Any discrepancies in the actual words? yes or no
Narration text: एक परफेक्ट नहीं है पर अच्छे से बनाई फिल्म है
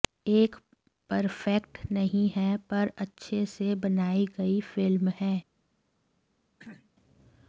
yes